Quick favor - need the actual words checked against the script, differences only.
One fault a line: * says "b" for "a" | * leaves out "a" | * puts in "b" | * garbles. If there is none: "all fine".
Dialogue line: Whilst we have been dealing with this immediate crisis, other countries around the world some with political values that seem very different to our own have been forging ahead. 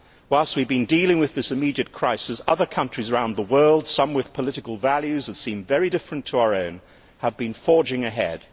all fine